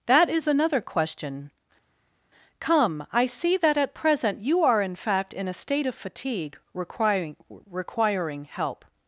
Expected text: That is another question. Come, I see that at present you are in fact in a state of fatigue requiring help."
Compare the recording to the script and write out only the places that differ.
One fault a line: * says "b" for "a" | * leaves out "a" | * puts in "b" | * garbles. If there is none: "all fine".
* puts in "requiring"